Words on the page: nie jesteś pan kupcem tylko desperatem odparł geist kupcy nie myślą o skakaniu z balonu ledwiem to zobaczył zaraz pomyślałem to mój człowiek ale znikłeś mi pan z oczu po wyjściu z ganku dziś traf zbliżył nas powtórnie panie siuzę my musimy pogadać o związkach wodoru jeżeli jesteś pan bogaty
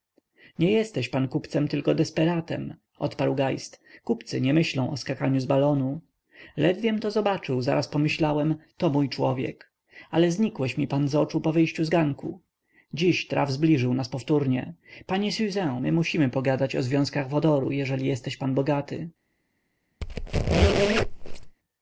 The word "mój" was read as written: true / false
true